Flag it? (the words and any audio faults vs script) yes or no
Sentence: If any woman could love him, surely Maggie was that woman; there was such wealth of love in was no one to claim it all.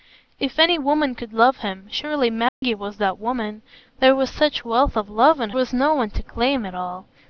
yes